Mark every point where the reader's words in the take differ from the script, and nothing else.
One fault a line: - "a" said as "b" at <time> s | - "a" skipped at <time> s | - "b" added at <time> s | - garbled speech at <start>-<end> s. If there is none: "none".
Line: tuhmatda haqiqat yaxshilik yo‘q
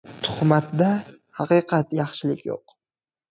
none